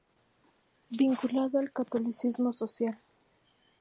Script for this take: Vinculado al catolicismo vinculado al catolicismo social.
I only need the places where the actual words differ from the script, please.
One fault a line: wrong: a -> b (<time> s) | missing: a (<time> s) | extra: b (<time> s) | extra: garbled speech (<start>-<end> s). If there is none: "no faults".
missing: vinculado al catolicismo (2.5 s)